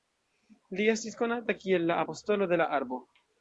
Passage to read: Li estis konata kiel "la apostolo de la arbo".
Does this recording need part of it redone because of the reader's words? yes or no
no